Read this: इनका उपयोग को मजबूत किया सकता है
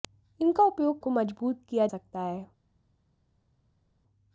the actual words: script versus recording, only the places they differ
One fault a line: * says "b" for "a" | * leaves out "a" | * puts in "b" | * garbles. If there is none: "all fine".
all fine